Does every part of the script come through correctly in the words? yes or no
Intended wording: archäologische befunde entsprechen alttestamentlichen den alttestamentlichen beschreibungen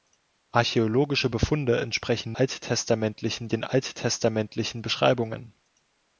yes